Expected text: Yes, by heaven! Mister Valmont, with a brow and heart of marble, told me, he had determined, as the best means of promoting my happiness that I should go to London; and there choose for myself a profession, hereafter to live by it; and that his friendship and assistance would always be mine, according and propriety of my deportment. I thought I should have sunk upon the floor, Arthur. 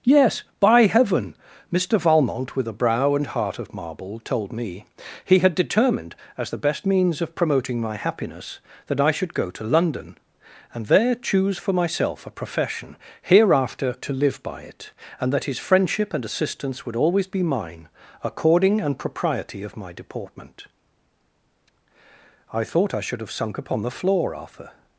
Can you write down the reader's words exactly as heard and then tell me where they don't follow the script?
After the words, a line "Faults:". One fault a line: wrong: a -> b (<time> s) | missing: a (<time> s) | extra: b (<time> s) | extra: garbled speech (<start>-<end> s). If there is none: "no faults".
Yes, by heaven! Mister Valmont, with a brow and heart of marble, told me, he had determined, as the best means of promoting my happiness that I should go to London; and there choose for myself a profession, hereafter to live by it; and that his friendship and assistance would always be mine, according and propriety of my deportment. I thought I should have sunk upon the floor, Arthur.
Faults:
no faults